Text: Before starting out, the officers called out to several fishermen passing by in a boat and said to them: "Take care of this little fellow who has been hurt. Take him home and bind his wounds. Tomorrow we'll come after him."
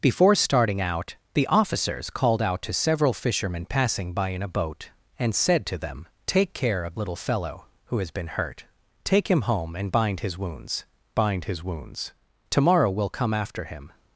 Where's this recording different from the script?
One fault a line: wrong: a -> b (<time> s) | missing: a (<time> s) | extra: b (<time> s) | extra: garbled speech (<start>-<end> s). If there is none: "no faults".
missing: this (7.0 s)
extra: bind his wounds (11.1 s)